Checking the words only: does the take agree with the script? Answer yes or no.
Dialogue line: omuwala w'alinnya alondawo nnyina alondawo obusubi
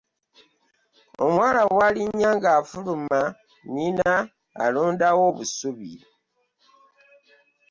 no